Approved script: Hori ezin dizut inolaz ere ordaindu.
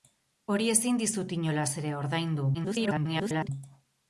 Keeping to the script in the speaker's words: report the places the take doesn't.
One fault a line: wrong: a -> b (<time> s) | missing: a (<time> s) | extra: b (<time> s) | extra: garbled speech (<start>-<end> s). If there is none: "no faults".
extra: garbled speech (2.5-3.5 s)